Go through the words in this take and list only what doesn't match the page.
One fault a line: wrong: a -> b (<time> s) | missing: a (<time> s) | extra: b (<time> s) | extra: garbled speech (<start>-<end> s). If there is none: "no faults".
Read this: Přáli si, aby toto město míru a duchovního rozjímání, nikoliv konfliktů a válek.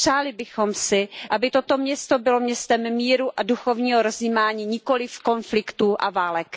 extra: bychom (0.3 s)
extra: bylo městem (2.2 s)